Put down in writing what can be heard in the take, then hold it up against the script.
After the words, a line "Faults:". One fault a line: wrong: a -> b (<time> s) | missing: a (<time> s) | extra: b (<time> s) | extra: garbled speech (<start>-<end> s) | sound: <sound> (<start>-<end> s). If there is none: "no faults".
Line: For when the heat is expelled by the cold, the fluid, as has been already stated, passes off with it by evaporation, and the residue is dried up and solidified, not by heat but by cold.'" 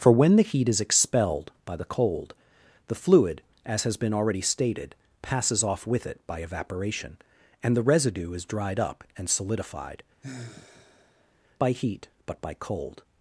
For when the heat is expelled by the cold, the fluid, as has been already stated, passes off with it by evaporation, and the residue is dried up and solidified, by heat but by cold.'"
Faults:
missing: not (10.0 s)
sound: sigh (10.2-11.3 s)